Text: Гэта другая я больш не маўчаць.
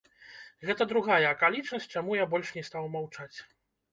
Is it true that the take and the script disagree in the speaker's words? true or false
true